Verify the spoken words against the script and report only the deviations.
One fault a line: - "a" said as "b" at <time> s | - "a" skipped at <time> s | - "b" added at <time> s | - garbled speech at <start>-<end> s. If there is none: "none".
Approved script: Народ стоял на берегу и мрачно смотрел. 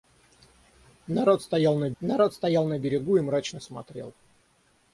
- "народ стоял на" added at 2.0 s